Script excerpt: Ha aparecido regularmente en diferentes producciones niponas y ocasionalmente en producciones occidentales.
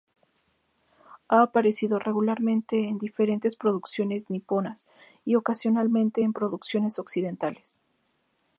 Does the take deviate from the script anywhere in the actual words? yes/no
no